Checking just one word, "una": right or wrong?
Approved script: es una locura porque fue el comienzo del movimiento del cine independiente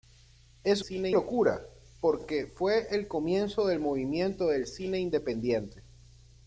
wrong